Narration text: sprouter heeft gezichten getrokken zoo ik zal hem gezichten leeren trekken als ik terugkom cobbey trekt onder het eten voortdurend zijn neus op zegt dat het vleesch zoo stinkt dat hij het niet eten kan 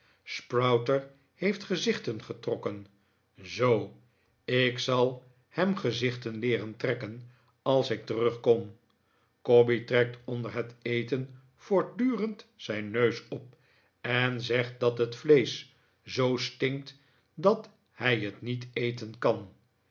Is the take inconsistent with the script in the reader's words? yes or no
yes